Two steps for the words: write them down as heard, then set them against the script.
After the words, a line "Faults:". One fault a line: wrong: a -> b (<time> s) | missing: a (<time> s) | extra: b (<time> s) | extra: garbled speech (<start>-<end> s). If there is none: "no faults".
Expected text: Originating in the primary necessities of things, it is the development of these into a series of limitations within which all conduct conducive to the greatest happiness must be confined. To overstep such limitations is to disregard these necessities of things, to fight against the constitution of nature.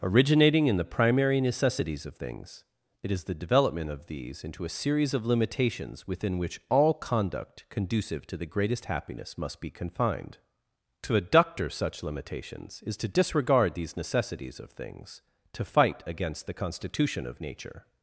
Originating in the primary necessities of things, it is the development of these into a series of limitations within which all conduct conducive to the greatest happiness must be confined. To adductor such limitations is to disregard these necessities of things, to fight against the constitution of nature.
Faults:
wrong: overstep -> adductor (11.2 s)